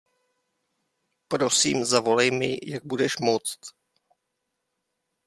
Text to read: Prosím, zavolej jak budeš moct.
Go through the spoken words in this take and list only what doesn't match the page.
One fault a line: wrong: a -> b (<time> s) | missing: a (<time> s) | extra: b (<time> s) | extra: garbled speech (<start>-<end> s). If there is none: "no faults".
extra: mi (2.3 s)